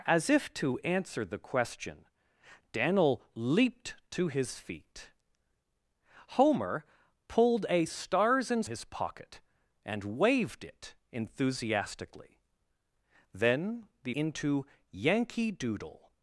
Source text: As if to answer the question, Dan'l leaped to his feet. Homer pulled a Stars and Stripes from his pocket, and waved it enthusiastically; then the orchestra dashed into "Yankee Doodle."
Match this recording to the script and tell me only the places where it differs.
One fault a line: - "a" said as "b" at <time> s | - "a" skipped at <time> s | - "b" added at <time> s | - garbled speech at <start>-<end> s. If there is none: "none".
- "Stripes from" skipped at 8.7 s
- "orchestra dashed" skipped at 14.2 s